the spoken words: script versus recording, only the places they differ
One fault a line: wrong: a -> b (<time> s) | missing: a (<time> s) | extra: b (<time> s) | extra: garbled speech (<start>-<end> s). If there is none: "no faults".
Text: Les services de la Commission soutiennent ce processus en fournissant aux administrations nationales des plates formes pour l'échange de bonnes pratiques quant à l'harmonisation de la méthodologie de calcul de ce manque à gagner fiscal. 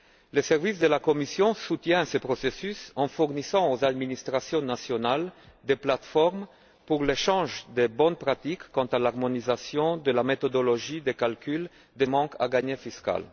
missing: ce (12.0 s)